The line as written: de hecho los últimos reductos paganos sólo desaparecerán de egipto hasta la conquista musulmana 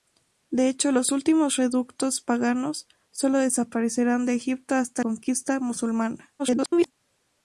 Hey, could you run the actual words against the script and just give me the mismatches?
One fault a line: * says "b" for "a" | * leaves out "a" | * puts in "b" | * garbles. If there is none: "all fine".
* leaves out "la"
* garbles